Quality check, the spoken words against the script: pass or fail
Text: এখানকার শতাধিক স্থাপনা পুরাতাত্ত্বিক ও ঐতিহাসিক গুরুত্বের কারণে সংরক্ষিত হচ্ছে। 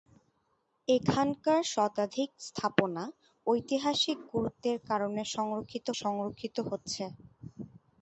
fail